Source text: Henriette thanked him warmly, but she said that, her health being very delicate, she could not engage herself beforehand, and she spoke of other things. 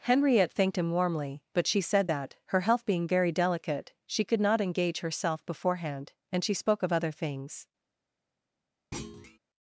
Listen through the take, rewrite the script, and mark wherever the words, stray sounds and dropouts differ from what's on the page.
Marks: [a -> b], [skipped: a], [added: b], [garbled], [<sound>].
Henriette thanked him warmly, but she said that, her health being very delicate, she could not engage herself beforehand, and she spoke of other things. [thud]